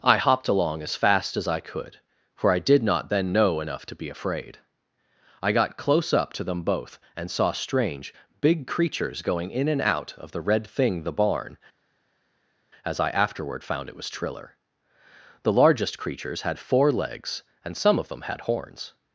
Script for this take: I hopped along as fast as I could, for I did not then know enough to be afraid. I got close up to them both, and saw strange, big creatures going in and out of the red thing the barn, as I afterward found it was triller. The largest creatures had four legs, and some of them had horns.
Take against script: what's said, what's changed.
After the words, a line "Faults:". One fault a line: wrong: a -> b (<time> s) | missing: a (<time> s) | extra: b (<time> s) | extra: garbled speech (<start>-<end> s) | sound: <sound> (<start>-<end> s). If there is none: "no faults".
I hopped along as fast as I could, for I did not then know enough to be afraid. I got close up to them both, and saw strange, big creatures going in and out of the red thing the barn, as I afterward found it was triller. The largest creatures had four legs, and some of them had horns.
Faults:
no faults